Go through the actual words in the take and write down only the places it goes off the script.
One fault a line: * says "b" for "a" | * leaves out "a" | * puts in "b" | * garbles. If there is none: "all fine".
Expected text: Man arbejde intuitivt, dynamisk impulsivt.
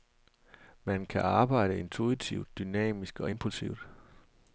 * puts in "kan"
* puts in "og"